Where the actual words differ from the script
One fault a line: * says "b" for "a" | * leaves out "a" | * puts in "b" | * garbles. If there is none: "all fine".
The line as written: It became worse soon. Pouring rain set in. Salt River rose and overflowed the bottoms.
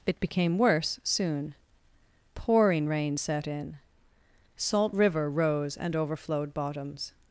* leaves out "the"